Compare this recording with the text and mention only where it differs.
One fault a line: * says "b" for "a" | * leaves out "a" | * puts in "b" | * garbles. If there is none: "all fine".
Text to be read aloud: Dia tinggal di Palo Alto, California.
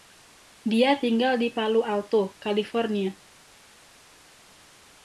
all fine